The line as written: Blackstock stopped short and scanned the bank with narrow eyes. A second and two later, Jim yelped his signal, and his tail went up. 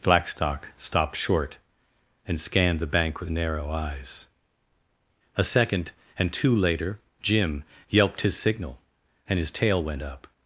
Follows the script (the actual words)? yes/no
yes